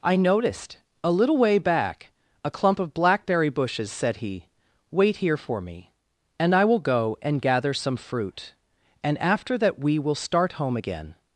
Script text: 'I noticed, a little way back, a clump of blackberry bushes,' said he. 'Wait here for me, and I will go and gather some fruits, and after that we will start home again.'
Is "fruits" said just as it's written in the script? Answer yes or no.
no